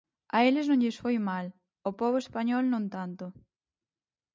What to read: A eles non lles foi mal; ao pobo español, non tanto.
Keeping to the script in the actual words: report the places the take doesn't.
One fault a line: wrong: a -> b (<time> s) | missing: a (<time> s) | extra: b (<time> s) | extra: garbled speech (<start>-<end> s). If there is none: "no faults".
no faults